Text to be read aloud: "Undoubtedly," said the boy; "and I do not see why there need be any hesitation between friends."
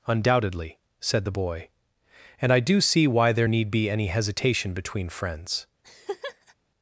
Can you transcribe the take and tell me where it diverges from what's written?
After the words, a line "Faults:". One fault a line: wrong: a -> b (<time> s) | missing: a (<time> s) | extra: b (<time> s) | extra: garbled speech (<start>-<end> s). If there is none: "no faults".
"Undoubtedly," said the boy; "and I do see why there need be any hesitation between friends."
Faults:
missing: not (2.8 s)